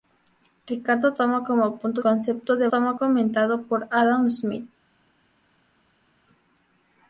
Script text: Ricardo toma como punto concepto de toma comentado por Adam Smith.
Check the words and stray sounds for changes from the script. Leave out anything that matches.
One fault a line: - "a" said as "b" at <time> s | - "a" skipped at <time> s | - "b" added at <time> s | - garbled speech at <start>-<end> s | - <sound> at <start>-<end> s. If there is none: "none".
none